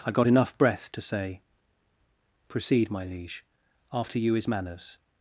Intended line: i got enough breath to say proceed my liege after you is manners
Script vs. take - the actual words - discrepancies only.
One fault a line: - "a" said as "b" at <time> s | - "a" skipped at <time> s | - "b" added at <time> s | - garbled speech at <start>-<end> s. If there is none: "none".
none